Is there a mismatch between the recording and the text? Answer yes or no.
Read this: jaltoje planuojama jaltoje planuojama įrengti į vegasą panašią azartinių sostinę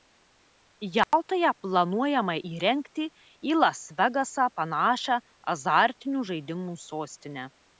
yes